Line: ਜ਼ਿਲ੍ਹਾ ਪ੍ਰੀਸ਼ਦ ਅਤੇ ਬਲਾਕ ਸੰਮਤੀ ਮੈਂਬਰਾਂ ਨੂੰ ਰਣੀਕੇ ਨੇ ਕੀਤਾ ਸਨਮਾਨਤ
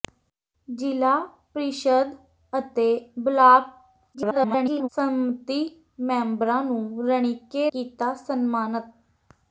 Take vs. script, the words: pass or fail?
fail